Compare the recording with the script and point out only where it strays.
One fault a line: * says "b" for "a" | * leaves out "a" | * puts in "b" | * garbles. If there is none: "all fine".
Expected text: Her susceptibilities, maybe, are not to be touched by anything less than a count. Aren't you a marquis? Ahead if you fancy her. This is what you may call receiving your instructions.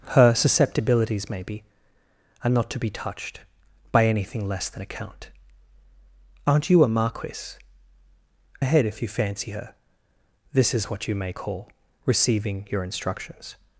all fine